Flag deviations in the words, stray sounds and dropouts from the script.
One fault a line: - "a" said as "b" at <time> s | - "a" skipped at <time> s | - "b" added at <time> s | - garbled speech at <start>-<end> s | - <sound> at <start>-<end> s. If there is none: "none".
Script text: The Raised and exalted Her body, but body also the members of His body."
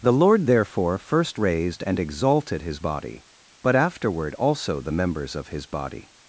- "Lord therefore first" added at 0.1 s
- "Her" said as "His" at 2.6 s
- "body" said as "afterward" at 3.7 s